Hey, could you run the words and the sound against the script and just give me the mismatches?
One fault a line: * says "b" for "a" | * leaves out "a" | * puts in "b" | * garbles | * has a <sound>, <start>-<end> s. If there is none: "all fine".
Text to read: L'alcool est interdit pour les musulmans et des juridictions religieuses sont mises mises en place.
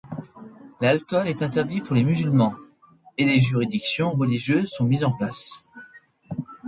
* leaves out "mises"